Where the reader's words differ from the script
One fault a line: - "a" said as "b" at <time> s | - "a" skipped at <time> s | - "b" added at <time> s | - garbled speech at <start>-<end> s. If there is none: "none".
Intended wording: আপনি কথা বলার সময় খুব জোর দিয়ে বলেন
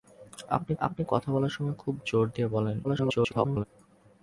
- "আপনি" added at 0.8 s
- garbled speech at 2.8-3.7 s